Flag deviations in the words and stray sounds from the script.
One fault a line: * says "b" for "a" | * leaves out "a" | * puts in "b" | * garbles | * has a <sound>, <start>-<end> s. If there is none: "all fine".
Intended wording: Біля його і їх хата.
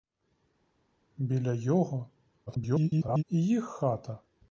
* garbles